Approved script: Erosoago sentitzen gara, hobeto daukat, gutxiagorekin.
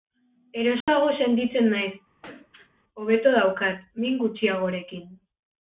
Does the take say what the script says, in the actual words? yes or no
no